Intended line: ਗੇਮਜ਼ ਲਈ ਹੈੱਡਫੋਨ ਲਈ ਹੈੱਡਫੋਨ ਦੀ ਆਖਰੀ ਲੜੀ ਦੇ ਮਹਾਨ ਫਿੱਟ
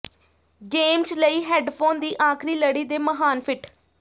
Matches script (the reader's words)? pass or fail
fail